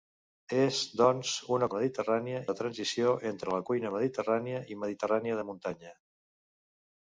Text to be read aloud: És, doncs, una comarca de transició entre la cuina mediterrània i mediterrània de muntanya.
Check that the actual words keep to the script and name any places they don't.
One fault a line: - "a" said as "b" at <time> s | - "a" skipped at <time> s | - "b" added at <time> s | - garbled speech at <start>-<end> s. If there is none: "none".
- "comarca" said as "mediterrània" at 1.8 s